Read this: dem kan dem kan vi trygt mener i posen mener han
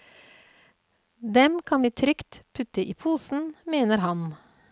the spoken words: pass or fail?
fail